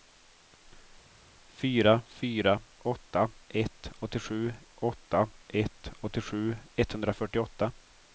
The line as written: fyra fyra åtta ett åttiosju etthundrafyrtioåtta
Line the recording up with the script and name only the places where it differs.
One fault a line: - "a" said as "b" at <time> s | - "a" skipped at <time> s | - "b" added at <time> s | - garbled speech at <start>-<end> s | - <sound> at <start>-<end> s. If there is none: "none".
- "åtta ett åttiosju" added at 4.7 s